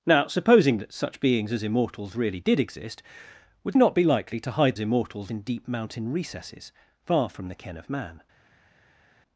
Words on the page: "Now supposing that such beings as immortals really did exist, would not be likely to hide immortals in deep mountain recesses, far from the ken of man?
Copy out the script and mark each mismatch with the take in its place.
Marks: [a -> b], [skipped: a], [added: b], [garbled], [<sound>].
"Now supposing that such beings as immortals really did exist, would not be likely to hide immortals in deep mountain recesses, far from the ken of man?